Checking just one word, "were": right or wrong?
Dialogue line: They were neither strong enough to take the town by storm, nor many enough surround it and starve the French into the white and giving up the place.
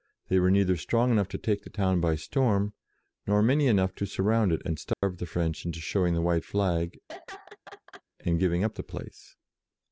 right